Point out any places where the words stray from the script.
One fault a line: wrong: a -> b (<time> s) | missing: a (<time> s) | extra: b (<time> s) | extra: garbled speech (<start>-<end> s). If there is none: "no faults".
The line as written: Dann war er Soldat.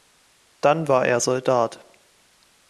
no faults